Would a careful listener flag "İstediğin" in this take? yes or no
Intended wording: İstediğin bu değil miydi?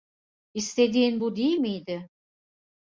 no